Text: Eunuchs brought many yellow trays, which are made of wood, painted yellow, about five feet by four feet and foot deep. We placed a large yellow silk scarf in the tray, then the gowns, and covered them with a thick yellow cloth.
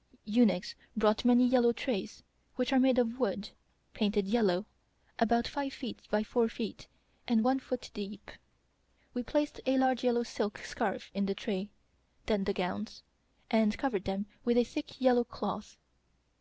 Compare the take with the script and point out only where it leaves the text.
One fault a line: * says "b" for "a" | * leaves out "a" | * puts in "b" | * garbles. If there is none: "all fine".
* puts in "one"